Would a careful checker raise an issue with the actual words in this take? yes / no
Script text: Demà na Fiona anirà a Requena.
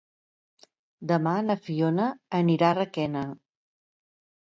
no